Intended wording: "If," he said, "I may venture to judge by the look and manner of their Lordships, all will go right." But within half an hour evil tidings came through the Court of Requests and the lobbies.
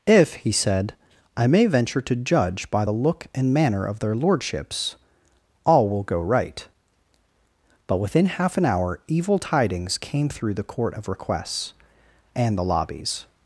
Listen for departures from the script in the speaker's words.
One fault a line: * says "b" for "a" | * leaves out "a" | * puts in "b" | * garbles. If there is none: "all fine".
all fine